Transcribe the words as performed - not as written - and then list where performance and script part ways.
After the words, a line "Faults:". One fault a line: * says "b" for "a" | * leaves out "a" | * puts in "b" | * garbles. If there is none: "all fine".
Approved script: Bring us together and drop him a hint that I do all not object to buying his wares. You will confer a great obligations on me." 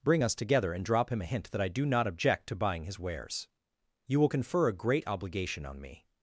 Bring us together and drop him a hint that I do not object to buying his wares. You will confer a great obligation on me."
Faults:
* leaves out "all"
* says "obligation" for "obligations"